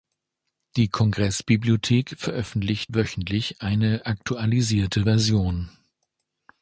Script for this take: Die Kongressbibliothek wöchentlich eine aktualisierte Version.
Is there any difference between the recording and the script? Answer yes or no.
yes